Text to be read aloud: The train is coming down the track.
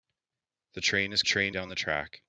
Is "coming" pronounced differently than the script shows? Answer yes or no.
yes